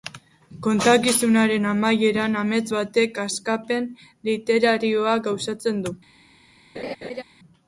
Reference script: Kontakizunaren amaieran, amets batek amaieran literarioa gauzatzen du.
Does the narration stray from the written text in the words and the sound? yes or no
yes